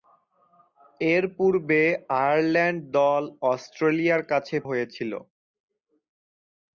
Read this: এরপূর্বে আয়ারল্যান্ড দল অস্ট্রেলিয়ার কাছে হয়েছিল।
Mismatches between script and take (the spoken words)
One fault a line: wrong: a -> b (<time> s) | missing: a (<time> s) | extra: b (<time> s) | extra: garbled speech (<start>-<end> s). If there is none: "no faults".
no faults